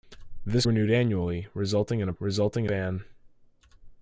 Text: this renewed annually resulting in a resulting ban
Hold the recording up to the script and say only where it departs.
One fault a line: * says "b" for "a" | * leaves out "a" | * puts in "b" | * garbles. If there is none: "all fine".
all fine